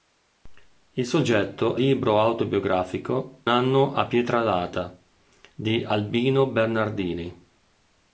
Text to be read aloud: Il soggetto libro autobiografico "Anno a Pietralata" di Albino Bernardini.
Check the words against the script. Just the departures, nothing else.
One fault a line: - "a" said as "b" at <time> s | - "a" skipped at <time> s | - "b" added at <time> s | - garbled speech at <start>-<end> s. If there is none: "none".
none